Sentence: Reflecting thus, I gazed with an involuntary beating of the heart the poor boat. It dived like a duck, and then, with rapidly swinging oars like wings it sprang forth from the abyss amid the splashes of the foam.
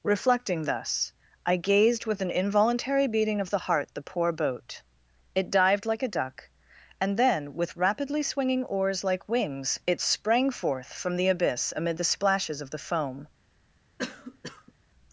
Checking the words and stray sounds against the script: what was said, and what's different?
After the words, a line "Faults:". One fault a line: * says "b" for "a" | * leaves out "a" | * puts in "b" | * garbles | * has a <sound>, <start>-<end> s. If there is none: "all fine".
Reflecting thus, I gazed with an involuntary beating of the heart the poor boat. It dived like a duck, and then, with rapidly swinging oars like wings it sprang forth from the abyss amid the splashes of the foam.
Faults:
* has a cough, 14.0-14.7 s